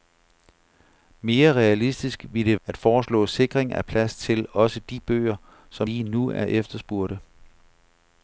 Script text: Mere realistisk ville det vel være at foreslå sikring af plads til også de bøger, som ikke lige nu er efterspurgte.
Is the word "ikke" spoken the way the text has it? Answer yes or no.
no